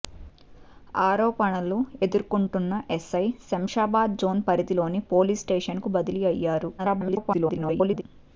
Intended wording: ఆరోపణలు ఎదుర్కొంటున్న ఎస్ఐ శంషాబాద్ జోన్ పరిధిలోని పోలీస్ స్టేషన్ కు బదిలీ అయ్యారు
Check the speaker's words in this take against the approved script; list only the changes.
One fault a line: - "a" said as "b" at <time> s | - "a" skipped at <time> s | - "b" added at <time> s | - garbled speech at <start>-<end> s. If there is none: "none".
- garbled speech at 6.8-8.0 s